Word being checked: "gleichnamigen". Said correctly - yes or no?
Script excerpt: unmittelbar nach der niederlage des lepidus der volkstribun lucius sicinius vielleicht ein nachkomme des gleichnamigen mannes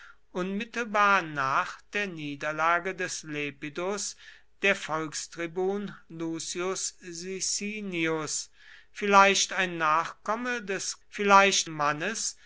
no